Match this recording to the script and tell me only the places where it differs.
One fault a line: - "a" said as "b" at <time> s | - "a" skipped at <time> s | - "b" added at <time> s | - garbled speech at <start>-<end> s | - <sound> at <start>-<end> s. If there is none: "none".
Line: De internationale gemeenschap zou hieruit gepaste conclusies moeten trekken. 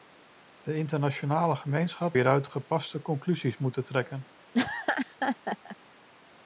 - "zou" skipped at 2.2 s
- laugh at 4.5-5.8 s